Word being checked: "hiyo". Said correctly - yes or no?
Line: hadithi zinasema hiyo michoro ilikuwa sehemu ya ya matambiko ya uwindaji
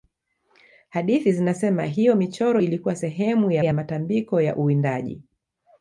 yes